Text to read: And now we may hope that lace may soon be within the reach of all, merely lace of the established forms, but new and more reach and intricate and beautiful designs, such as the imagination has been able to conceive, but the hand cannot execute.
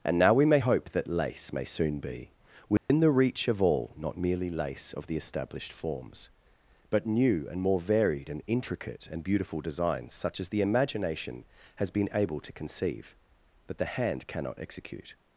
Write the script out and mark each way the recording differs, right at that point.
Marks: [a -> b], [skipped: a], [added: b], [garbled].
And now we may hope that lace may soon be within the reach of all, [added: not] merely lace of the established forms, but new and more [reach -> varied] and intricate and beautiful designs, such as the imagination has been able to conceive, but the hand cannot execute.